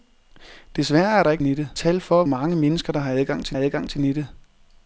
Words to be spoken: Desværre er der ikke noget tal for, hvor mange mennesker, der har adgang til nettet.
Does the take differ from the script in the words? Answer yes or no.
yes